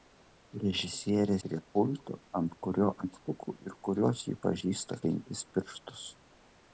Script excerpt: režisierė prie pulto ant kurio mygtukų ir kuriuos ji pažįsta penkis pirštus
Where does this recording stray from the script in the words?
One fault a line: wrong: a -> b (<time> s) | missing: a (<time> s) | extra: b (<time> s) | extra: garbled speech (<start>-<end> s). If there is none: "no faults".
no faults